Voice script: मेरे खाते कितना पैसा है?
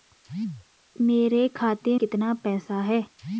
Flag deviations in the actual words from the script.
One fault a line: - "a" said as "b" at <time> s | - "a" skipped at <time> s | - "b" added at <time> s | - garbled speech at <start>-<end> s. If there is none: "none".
none